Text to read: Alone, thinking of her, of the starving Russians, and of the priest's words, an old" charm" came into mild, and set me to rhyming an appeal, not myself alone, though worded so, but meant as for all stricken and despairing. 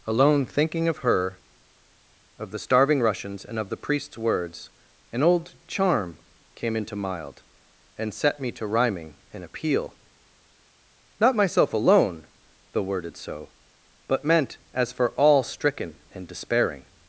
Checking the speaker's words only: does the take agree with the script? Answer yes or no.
yes